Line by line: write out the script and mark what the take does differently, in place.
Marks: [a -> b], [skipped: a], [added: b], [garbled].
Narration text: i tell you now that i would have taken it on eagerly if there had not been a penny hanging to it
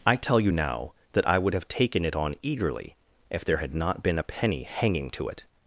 i tell you now that i would have taken it on eagerly if there had not been a penny hanging to it